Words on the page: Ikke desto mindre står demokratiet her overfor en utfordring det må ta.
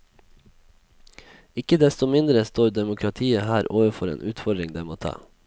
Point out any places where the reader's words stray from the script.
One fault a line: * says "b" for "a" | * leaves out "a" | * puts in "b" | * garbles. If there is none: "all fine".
all fine